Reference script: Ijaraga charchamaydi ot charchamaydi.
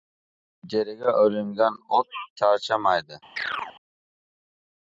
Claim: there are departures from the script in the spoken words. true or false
true